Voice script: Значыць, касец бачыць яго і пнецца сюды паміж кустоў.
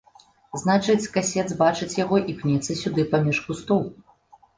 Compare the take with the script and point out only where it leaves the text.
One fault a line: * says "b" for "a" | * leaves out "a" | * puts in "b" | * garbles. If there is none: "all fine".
all fine